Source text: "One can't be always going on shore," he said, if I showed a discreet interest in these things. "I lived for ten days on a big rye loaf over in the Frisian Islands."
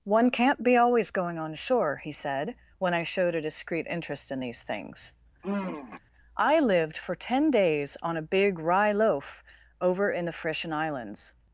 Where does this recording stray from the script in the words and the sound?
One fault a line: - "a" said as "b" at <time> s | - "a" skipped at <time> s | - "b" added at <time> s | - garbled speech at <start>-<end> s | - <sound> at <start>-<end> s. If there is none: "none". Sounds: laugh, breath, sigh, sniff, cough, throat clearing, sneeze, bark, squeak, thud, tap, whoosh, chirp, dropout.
- "if" said as "when" at 2.8 s
- sigh at 5.4-6.0 s